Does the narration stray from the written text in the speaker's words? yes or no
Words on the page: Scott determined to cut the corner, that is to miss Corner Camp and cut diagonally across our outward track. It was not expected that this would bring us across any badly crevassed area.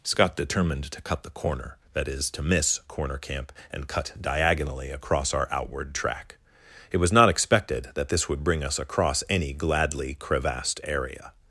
yes